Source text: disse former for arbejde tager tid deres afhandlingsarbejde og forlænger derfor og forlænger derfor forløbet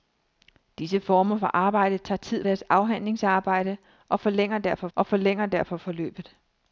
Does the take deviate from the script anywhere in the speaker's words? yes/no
no